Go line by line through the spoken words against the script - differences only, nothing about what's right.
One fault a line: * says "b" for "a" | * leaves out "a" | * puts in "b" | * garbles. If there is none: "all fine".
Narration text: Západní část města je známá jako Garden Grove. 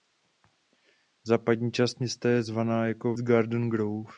all fine